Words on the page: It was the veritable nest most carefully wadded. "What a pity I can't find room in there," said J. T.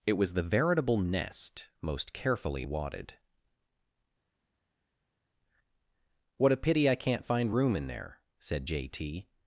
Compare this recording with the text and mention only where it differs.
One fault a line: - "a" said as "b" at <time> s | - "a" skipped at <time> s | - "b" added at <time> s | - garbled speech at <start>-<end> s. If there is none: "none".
none